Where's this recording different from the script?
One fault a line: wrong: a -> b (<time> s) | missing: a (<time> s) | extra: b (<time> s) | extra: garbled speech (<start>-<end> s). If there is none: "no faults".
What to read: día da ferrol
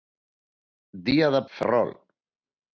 no faults